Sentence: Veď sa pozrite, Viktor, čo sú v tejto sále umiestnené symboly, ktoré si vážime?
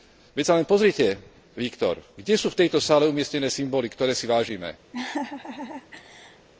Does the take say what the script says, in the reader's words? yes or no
no